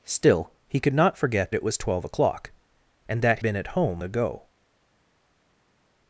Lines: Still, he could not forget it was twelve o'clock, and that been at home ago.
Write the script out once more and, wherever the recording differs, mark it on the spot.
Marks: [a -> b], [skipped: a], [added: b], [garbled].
Still, he could not forget it was twelve o'clock, and that been at home ago.